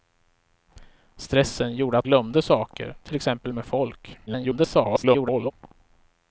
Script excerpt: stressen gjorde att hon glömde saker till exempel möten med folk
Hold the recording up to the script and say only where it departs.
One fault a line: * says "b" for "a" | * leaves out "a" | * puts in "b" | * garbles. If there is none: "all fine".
* leaves out "hon"
* leaves out "möten"
* garbles